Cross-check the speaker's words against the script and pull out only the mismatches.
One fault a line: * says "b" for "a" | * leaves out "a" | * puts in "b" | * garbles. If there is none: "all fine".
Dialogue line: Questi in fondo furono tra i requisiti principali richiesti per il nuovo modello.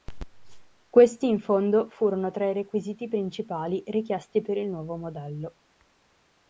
all fine